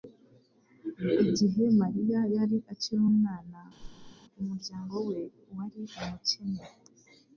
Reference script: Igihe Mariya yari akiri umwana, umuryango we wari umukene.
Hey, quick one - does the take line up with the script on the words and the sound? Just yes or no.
no